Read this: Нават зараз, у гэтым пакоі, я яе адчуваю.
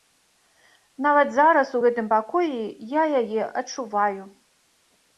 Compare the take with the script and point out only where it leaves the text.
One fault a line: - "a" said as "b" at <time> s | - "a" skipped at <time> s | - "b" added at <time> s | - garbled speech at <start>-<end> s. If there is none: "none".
none